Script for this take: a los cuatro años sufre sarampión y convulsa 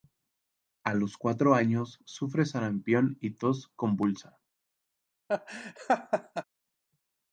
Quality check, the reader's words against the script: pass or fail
fail